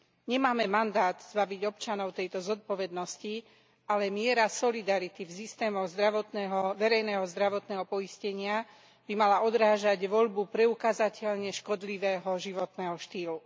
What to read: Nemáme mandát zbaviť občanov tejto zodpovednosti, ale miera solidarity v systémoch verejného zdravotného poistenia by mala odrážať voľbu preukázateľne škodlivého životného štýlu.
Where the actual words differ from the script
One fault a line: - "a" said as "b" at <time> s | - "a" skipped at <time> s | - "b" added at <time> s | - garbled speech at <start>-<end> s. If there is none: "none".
none